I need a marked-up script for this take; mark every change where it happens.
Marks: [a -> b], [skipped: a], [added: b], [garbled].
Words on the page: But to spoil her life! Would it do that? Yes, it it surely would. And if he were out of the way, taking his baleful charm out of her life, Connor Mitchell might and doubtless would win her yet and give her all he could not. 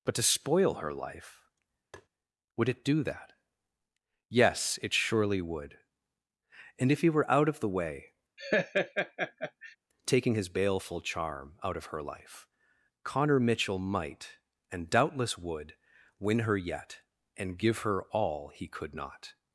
But to spoil her life! Would it do that? Yes, it [skipped: it] surely would. And if he were out of the way, taking his baleful charm out of her life, Connor Mitchell might and doubtless would win her yet and give her all he could not.